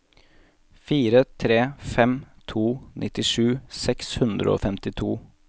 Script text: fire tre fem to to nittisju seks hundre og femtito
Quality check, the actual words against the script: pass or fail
fail